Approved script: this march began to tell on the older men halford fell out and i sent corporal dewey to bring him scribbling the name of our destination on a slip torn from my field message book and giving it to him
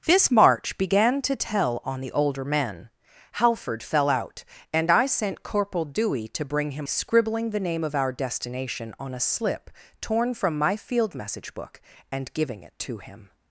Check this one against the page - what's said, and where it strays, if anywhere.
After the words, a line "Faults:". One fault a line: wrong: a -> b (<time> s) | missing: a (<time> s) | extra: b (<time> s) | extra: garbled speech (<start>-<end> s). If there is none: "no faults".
this march began to tell on the older men halford fell out and i sent corporal dewey to bring him scribbling the name of our destination on a slip torn from my field message book and giving it to him
Faults:
no faults